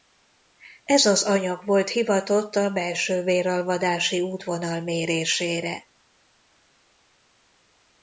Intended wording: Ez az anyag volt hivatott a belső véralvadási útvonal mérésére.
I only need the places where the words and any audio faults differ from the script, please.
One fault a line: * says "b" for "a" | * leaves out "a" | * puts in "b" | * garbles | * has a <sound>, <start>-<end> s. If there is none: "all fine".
all fine